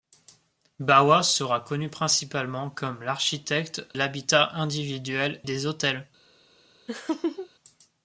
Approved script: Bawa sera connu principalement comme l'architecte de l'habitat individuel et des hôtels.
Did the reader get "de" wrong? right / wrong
wrong